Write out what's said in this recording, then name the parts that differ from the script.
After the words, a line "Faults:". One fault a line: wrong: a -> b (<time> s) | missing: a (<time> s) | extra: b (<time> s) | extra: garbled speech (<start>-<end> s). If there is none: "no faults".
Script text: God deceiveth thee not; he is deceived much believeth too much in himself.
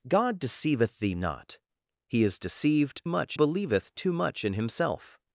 God deceiveth thee not; he is deceived much believeth too much in himself.
Faults:
no faults